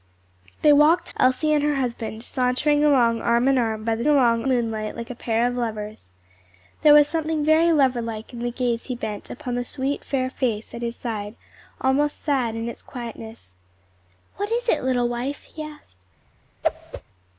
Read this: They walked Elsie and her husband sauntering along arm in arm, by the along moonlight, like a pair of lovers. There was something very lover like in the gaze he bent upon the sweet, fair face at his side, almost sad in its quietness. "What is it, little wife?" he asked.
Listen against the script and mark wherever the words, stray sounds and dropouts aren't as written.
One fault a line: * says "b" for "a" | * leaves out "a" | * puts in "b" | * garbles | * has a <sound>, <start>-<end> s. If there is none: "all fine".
* has a whoosh, 16.6-17.0 s